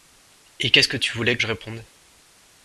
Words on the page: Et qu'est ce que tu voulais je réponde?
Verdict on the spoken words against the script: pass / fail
pass